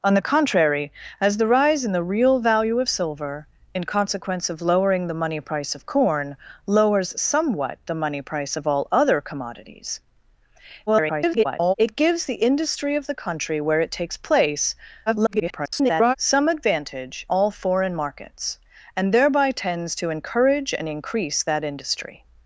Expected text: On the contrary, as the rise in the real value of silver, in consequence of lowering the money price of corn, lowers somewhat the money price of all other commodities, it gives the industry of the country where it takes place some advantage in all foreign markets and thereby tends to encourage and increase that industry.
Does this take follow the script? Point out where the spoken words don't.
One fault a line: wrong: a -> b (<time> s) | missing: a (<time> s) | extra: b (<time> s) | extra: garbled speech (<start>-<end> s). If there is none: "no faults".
extra: garbled speech (10.9-11.7 s)
extra: garbled speech (15.1-16.2 s)
missing: in (17.3 s)